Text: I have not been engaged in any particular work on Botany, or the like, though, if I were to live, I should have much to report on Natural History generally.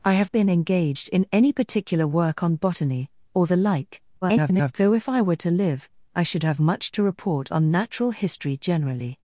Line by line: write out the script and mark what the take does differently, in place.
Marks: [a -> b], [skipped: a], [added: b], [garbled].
I have [skipped: not] been engaged in any particular work on Botany, or the like, [garbled] though, if I were to live, I should have much to report on Natural History generally.